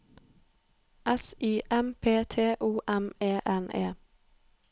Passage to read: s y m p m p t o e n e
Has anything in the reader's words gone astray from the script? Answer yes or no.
yes